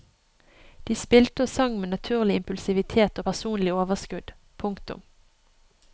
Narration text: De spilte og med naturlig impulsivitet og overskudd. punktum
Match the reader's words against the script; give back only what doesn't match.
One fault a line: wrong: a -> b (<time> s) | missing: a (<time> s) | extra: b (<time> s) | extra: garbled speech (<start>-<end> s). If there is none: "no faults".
extra: sang (1.5 s)
extra: personlig (3.2 s)